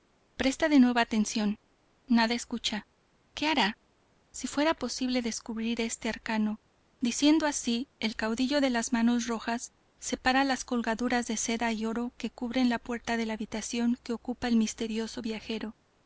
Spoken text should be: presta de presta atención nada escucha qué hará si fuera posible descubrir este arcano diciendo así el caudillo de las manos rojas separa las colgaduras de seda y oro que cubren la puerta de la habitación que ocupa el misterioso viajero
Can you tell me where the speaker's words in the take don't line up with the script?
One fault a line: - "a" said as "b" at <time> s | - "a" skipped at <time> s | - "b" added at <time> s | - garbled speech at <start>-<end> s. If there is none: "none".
- "presta" said as "nuevo" at 0.8 s